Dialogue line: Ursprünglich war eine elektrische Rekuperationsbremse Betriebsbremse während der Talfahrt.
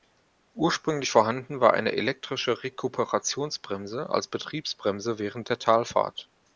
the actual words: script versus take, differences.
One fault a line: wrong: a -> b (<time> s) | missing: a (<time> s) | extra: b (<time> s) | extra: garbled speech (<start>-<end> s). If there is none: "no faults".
extra: vorhanden (1.1 s)
extra: als (4.1 s)